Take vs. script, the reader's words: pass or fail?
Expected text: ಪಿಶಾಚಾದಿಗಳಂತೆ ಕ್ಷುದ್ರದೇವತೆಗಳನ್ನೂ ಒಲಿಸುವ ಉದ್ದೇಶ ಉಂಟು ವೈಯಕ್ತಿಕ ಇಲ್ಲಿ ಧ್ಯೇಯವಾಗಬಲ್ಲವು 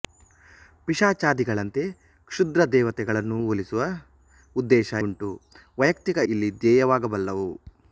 pass